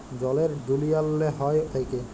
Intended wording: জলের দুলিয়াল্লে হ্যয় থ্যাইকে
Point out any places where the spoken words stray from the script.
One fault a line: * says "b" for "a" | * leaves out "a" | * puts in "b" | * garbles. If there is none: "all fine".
all fine